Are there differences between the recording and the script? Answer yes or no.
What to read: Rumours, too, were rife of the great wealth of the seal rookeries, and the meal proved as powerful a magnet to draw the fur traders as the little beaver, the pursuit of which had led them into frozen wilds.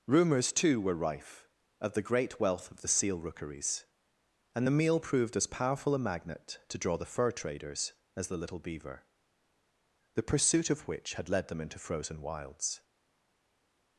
no